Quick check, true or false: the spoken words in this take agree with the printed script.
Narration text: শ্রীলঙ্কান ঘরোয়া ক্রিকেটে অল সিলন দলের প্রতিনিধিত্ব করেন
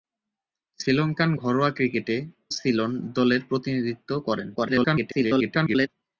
false